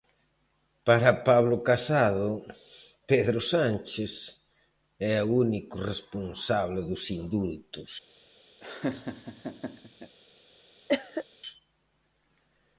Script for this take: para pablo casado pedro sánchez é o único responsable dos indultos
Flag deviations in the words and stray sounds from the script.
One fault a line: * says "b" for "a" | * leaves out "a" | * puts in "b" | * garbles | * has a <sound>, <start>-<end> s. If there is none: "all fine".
* has a laugh, 8.6-10.2 s
* has a cough, 10.9-11.2 s